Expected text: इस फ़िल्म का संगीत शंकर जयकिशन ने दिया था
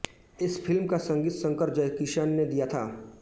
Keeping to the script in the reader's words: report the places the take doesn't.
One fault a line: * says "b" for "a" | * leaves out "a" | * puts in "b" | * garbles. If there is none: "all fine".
all fine